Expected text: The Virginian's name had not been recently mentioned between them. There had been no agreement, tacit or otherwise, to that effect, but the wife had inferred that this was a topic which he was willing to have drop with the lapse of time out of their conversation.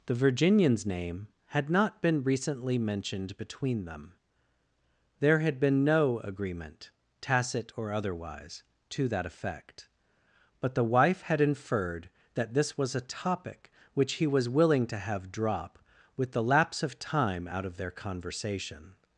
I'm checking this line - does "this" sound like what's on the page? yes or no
yes